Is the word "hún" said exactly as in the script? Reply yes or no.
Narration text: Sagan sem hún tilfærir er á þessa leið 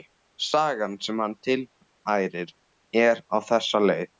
no